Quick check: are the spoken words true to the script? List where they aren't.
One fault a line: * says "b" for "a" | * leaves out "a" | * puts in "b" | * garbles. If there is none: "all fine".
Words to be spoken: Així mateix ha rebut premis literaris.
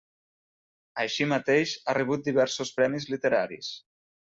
* puts in "diversos"